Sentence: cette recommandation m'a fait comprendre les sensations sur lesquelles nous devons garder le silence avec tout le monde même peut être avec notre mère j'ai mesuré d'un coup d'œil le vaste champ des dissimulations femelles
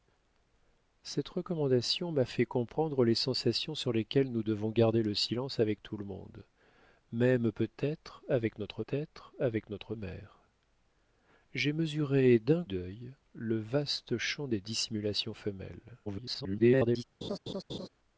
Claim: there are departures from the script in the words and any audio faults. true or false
true